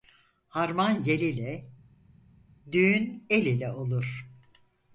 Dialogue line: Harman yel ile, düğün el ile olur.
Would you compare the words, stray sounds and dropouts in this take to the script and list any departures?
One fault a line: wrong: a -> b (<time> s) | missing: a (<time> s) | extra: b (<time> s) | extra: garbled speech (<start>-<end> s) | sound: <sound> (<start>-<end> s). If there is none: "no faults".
no faults